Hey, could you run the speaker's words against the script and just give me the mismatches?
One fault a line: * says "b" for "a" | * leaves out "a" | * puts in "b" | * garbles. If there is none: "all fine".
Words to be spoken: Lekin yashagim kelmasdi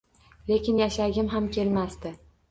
* puts in "ham"